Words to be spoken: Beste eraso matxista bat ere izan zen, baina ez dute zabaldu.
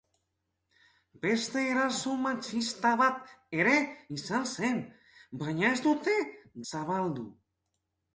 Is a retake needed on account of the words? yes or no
no